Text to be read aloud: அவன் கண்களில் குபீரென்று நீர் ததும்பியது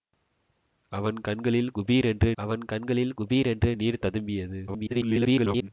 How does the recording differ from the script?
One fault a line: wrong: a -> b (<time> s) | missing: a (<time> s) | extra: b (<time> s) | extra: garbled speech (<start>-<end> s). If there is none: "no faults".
extra: அவன் கண்களில் குபீரென்று (2.4 s)
extra: garbled speech (4.7-5.7 s)